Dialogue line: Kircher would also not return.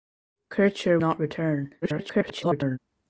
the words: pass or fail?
fail